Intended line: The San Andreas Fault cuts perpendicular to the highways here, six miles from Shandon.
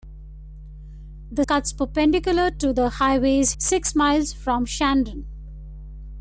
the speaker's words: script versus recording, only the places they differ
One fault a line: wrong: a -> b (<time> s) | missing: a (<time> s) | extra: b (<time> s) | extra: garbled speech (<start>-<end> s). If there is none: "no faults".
missing: San Andreas Fault (1.4 s)
missing: here (3.5 s)